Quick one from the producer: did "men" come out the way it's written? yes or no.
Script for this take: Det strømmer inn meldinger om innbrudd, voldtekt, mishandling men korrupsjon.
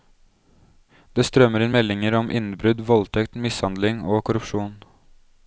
no